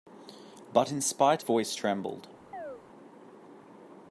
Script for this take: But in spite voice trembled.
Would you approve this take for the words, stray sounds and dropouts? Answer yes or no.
no